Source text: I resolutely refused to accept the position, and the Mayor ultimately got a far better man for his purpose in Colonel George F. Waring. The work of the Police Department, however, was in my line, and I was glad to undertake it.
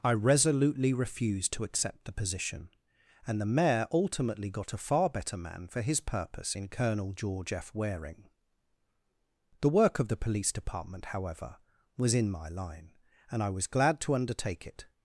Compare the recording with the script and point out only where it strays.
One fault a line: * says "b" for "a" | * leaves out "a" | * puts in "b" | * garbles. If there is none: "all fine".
all fine